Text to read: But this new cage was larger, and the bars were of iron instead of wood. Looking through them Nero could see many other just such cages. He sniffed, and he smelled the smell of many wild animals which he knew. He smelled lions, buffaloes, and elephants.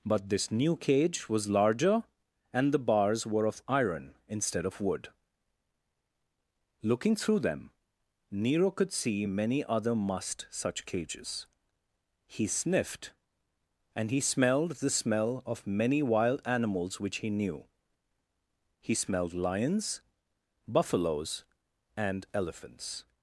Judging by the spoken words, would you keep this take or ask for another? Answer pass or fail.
fail